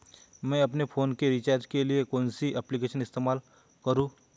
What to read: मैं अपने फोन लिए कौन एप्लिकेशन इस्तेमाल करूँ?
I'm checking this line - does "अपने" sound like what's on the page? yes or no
yes